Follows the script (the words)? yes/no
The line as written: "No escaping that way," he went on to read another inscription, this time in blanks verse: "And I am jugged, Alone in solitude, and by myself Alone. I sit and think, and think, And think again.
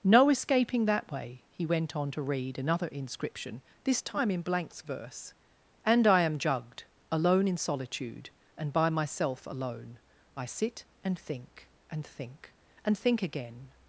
yes